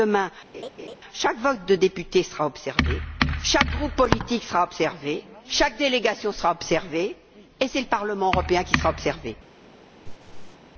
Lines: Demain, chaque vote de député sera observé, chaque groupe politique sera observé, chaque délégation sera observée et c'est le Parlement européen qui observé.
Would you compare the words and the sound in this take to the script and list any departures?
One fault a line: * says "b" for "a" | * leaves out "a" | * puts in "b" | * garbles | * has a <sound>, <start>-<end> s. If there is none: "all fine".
* has a laugh, 0.5-1.0 s
* puts in "sera"
* has a laugh, 10.0-10.6 s